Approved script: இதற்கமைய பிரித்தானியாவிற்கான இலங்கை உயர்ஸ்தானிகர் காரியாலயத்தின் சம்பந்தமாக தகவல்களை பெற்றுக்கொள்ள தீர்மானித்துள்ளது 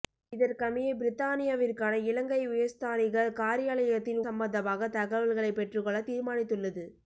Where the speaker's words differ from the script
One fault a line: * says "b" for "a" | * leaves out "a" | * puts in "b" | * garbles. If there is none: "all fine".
all fine